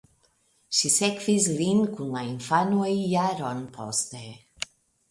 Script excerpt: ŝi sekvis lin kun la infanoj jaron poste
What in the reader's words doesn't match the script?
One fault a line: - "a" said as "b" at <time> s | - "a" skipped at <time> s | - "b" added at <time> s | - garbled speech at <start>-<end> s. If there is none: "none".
none